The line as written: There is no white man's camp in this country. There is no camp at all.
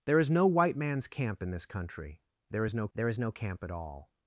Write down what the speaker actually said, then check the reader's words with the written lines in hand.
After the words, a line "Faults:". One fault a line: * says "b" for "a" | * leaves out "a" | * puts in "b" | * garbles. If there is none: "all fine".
There is no white man's camp in this country. There is no there is no camp at all.
Faults:
* puts in "there is no"